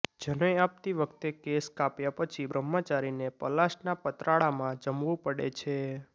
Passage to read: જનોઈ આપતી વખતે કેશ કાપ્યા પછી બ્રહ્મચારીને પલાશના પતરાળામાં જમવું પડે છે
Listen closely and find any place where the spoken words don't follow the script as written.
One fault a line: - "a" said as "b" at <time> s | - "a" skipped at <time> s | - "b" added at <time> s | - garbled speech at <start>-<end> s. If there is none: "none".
none